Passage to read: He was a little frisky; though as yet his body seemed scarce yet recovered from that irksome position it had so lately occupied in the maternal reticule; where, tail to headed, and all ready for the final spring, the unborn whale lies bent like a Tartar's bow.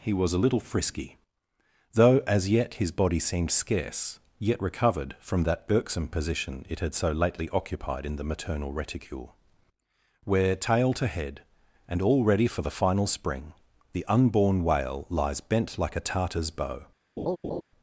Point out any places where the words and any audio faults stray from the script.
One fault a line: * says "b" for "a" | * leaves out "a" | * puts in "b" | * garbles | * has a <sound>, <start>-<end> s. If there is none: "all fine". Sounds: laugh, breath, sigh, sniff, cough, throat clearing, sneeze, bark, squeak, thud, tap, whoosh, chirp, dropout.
* says "head" for "headed"
* has a laugh, 17.2-17.6 s